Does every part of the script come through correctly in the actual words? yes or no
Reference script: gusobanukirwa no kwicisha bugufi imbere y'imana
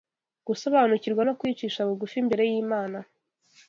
yes